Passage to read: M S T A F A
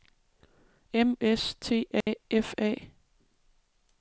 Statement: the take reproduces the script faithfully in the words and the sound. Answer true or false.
false